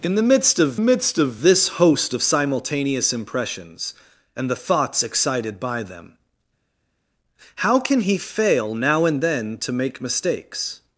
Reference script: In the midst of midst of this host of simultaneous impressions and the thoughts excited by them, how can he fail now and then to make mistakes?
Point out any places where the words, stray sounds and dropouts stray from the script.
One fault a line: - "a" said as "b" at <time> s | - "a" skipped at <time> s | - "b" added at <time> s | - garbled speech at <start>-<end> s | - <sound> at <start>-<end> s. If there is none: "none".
none